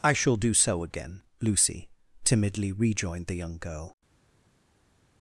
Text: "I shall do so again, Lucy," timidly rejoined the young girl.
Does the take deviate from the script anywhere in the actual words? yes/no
no